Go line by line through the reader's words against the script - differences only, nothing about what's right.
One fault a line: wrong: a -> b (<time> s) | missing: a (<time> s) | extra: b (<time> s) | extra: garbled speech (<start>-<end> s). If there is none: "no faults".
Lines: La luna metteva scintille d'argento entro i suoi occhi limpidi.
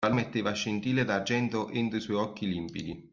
missing: luna (0.1 s)